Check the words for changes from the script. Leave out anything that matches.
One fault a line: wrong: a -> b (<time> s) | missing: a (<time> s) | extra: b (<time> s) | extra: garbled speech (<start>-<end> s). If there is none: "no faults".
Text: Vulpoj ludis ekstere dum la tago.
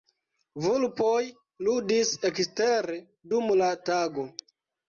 no faults